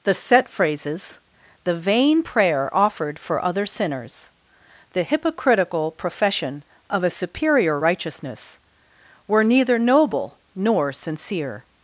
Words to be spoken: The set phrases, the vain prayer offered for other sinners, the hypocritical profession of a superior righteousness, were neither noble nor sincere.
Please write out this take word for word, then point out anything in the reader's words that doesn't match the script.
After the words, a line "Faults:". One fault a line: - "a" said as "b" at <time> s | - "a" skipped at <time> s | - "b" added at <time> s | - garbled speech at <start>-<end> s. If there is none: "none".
The set phrases, the vain prayer offered for other sinners, the hypocritical profession of a superior righteousness, were neither noble nor sincere.
Faults:
none